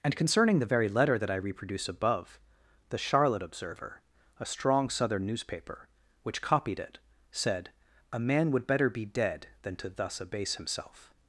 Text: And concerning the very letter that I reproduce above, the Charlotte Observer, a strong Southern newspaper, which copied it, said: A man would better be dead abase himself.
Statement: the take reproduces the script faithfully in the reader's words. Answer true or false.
false